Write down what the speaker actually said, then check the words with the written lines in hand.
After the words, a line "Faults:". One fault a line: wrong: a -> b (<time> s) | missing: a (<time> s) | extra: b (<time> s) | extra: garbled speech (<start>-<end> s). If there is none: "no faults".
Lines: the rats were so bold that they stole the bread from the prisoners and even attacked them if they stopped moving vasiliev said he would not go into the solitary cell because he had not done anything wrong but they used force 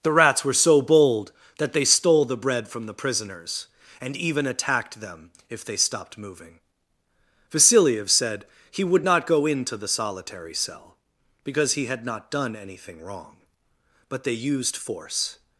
the rats were so bold that they stole the bread from the prisoners and even attacked them if they stopped moving vasiliev said he would not go into the solitary cell because he had not done anything wrong but they used force
Faults:
no faults